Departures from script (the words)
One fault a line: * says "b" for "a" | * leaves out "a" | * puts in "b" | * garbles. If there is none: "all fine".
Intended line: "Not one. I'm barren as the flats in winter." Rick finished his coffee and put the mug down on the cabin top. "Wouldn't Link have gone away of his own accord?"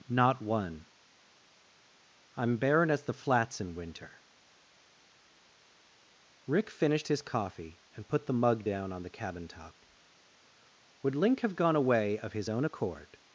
* says "Would" for "Wouldn't"